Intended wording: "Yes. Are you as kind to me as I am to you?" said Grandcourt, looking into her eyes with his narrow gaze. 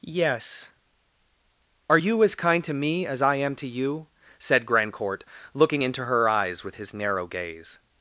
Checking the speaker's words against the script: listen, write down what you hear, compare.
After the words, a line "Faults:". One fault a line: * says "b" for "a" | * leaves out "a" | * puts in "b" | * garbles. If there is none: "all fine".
"Yes. Are you as kind to me as I am to you?" said Grandcourt, looking into her eyes with his narrow gaze.
Faults:
all fine